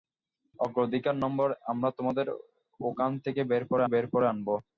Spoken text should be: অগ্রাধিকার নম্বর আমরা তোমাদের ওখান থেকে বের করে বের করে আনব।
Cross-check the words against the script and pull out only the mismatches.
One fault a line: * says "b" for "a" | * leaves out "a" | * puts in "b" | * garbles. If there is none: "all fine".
all fine